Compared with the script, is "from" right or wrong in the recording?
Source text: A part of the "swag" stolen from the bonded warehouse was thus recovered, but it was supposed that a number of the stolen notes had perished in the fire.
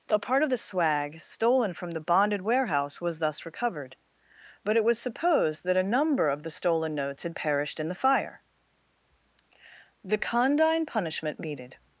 right